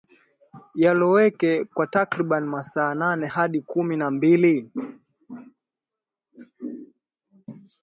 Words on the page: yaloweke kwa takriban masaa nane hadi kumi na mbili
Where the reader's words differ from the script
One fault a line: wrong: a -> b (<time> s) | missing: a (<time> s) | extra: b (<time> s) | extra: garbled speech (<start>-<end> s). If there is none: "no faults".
no faults